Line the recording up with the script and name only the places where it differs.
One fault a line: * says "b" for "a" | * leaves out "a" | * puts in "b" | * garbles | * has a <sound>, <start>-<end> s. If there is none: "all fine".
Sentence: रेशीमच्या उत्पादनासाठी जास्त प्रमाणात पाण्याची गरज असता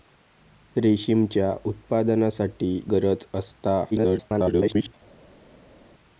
* leaves out "जास्त प्रमाणात पाण्याची"
* garbles